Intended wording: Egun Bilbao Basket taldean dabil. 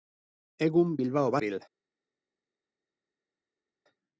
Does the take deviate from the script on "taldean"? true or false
true